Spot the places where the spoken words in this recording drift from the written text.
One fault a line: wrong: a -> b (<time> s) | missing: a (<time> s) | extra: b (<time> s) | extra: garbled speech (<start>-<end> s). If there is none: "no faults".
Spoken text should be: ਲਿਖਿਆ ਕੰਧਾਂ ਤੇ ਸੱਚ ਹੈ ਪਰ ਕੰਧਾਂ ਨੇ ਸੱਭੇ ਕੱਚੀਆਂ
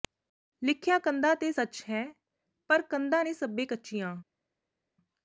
no faults